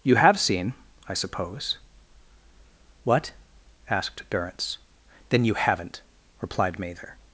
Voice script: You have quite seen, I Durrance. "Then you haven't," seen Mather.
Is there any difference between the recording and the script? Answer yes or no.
yes